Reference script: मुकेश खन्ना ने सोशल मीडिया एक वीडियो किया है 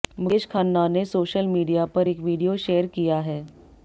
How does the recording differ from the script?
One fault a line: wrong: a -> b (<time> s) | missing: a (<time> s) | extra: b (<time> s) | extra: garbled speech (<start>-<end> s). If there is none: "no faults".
extra: पर (1.9 s)
extra: शेयर (2.6 s)